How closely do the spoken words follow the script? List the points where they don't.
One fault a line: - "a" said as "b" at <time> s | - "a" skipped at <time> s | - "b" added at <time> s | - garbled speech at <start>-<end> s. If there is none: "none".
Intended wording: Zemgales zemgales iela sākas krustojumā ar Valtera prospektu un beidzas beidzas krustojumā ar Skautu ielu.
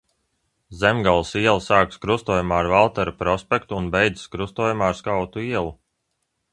- "zemgales" skipped at 1.3 s
- "beidzas" skipped at 4.3 s